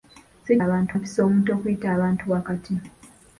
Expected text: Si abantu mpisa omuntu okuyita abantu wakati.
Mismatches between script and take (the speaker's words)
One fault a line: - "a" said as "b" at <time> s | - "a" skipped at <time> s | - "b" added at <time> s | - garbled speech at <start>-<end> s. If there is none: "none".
none